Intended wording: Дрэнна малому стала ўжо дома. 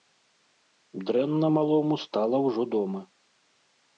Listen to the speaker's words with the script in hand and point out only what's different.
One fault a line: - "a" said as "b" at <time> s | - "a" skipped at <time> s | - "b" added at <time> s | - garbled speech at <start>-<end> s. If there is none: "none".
none